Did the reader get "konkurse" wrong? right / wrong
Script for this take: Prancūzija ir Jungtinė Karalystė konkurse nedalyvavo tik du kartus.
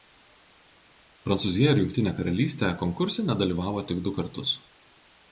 right